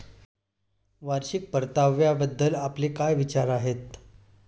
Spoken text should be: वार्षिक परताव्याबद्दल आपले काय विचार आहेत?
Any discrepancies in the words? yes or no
no